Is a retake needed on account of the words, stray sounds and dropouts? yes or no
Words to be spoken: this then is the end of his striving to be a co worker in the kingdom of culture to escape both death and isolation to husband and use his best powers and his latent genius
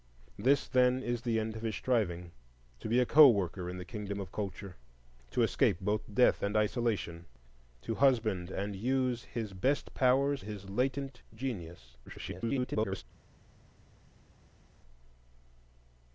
yes